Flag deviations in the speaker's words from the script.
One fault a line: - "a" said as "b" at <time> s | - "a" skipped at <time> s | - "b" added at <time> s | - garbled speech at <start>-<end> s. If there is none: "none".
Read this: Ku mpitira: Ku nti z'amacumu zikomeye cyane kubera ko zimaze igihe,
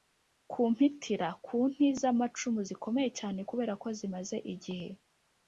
none